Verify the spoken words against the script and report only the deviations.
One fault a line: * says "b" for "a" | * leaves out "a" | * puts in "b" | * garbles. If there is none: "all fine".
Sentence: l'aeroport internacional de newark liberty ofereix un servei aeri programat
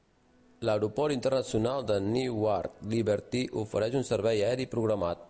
all fine